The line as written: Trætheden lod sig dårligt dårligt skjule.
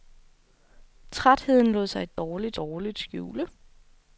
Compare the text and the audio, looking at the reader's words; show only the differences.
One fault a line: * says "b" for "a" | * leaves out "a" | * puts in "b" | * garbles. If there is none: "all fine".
all fine